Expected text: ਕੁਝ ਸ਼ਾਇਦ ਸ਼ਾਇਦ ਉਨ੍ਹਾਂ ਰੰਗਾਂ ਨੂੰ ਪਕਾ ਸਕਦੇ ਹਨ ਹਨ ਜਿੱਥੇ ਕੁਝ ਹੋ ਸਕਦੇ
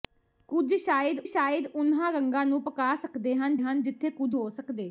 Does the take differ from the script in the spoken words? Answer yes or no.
no